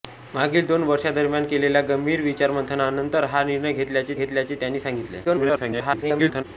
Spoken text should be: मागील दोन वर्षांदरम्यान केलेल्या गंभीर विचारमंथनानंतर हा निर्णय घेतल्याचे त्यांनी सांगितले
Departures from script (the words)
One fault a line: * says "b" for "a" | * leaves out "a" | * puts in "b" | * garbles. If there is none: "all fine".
* puts in "घेतल्याचे"
* garbles